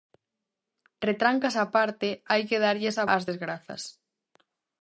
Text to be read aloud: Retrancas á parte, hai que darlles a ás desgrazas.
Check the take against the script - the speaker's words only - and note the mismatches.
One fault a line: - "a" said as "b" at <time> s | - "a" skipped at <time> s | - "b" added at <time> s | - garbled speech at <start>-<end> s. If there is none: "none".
none